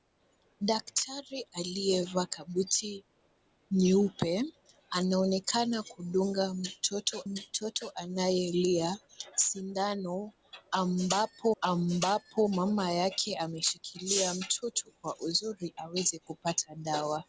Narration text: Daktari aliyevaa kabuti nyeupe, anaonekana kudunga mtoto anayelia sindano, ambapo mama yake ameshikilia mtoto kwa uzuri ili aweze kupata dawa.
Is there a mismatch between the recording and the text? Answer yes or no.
yes